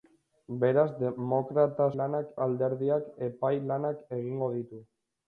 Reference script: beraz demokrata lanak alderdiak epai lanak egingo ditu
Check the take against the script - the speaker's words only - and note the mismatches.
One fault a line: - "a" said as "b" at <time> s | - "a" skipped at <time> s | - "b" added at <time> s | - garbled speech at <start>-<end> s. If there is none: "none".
none